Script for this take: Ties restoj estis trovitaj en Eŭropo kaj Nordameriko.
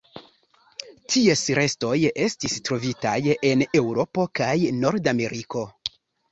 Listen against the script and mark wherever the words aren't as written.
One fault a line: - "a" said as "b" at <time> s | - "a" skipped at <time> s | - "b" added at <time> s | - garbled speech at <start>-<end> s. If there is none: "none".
none